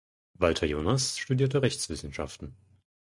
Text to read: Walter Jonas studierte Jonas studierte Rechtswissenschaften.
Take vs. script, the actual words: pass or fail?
fail